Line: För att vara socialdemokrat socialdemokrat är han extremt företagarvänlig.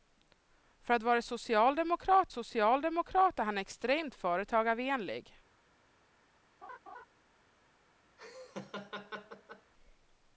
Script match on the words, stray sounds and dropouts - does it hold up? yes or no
no